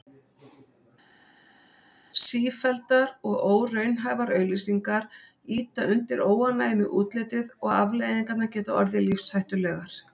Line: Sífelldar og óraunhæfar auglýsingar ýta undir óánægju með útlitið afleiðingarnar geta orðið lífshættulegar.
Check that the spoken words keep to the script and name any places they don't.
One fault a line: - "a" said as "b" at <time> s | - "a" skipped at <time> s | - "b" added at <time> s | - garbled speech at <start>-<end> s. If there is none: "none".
- "og" added at 7.6 s